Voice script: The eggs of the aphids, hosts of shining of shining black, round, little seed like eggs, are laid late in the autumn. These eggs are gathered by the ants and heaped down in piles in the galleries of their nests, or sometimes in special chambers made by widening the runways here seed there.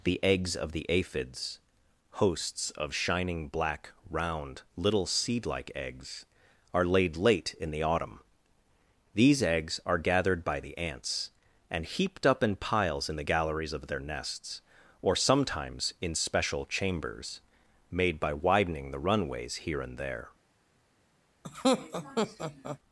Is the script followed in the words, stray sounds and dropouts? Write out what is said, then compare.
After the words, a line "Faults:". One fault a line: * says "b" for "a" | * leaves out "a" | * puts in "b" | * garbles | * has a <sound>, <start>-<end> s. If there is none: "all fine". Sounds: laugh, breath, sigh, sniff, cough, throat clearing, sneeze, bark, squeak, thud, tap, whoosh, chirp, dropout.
The eggs of the aphids, hosts of shining black, round, little seed like eggs, are laid late in the autumn. These eggs are gathered by the ants and heaped up in piles in the galleries of their nests, or sometimes in special chambers made by widening the runways here and there.
Faults:
* leaves out "of shining"
* says "up" for "down"
* says "and" for "seed"
* has a laugh, 21.4-22.8 s